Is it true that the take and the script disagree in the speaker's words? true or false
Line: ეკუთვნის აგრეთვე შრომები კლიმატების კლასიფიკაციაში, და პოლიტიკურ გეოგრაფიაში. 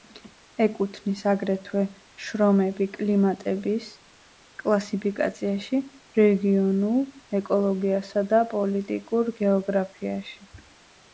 true